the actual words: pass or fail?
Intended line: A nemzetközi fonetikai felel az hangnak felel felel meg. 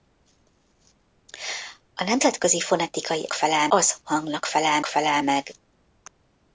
pass